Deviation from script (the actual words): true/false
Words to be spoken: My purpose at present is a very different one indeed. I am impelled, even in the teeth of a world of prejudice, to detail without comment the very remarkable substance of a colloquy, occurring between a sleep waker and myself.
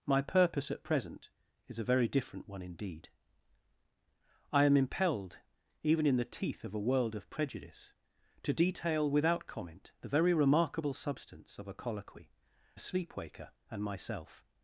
true